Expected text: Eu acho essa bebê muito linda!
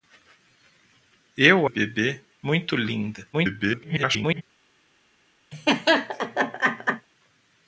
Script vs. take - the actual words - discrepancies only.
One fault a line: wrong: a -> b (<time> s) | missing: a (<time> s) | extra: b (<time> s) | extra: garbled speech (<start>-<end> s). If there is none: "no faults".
missing: acho essa (1.7 s)
extra: garbled speech (3.3-4.4 s)